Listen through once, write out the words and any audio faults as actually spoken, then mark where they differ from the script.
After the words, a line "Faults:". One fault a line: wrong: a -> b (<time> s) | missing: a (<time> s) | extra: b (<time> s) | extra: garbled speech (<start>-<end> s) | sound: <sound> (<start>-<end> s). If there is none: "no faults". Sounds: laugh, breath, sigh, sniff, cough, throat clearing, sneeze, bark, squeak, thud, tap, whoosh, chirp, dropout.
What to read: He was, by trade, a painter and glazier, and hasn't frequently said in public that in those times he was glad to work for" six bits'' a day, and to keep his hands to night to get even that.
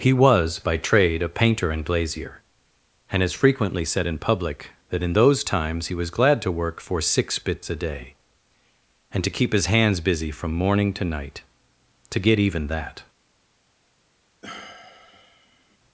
He was, by trade, a painter and glazier, and has frequently said in public that in those times he was glad to work for" six bits'' a day, and to keep his hands busy from morning to night to get even that.
Faults:
wrong: hasn't -> has (3.2 s)
extra: busy from morning (10.0 s)
sound: sigh (14.4-15.8 s)